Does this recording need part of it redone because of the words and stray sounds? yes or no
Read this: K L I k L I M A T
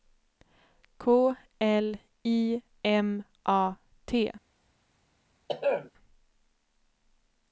yes